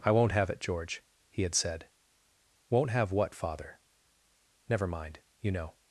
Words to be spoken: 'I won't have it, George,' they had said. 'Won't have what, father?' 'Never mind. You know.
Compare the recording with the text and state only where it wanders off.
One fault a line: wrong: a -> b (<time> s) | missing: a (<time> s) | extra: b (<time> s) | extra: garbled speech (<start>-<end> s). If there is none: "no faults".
wrong: they -> he (1.3 s)